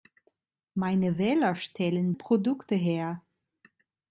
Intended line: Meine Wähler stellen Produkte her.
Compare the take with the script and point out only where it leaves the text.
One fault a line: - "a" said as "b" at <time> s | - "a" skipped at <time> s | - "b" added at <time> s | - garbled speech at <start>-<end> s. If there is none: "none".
none